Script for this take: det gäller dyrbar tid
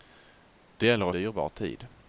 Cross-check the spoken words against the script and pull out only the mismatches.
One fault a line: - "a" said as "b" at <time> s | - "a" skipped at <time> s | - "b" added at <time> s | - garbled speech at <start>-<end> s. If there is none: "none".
none